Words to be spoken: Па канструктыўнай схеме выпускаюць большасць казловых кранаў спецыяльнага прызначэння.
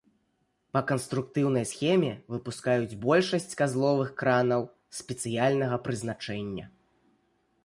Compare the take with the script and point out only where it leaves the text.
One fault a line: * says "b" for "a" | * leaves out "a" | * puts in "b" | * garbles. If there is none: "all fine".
all fine